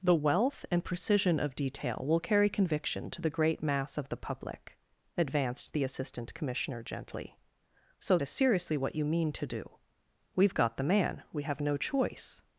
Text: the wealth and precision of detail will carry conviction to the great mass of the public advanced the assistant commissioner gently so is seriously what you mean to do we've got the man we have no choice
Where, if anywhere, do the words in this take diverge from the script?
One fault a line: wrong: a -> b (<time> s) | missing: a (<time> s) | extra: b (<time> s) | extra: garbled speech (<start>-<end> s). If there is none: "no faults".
no faults